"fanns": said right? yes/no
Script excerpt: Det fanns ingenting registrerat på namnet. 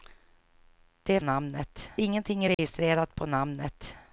no